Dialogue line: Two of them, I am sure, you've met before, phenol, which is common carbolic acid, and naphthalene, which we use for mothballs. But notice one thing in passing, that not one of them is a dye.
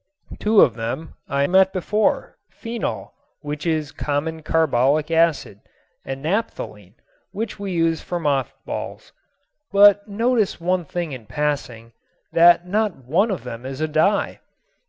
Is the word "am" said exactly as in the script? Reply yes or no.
no